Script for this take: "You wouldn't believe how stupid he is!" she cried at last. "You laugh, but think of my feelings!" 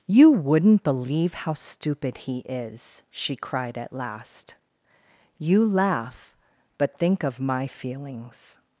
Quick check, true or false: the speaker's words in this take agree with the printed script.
true